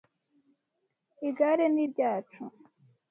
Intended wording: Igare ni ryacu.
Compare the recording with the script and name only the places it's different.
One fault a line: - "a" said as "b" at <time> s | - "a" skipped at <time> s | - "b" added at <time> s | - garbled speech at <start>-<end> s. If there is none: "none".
none